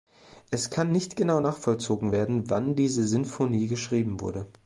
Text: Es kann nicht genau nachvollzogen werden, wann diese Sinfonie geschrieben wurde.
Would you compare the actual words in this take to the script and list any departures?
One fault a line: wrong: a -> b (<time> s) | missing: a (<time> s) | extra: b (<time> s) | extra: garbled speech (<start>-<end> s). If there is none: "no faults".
no faults